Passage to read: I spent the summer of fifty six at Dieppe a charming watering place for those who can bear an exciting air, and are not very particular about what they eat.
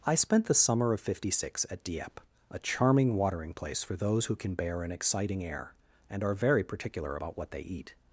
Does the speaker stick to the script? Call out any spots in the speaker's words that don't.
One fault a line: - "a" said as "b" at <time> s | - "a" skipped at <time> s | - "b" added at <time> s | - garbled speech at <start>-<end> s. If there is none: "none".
- "not" skipped at 6.3 s